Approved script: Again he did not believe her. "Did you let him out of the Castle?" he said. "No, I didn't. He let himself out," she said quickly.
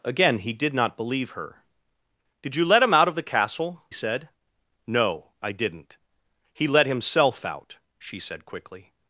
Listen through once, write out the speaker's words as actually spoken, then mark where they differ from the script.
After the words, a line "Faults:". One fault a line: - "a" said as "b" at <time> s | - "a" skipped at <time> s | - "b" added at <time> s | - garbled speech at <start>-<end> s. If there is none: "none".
Again he did not believe her. "Did you let him out of the Castle?" said. "No, I didn't. He let himself out," she said quickly.
Faults:
- "he" skipped at 3.8 s